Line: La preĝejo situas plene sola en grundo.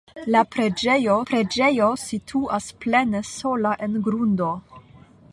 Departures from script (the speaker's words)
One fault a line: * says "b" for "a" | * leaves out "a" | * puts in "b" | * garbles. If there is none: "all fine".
* puts in "preĝejo"